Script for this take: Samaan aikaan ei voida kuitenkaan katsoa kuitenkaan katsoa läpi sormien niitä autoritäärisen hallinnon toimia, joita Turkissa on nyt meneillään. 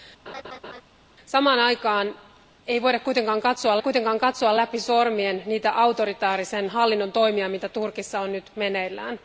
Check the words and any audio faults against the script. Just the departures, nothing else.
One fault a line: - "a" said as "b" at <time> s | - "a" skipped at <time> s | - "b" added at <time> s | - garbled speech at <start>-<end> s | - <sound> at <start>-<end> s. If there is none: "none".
- laugh at 0.3-0.8 s